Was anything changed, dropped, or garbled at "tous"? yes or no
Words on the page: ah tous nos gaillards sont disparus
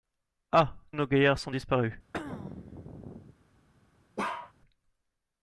yes